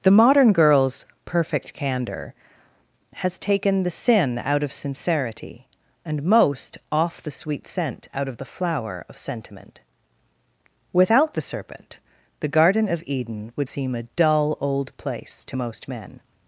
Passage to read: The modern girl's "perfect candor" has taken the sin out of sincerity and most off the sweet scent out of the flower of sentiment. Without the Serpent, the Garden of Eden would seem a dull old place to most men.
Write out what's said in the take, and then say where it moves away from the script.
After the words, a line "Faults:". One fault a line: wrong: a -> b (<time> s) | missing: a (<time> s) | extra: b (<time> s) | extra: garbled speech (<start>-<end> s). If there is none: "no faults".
The modern girl's "perfect candor" has taken the sin out of sincerity and most off the sweet scent out of the flower of sentiment. Without the Serpent, the Garden of Eden would seem a dull old place to most men.
Faults:
no faults